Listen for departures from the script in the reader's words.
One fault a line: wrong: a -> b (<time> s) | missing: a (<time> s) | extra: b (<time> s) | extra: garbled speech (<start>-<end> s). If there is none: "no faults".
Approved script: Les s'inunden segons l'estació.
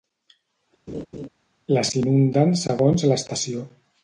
no faults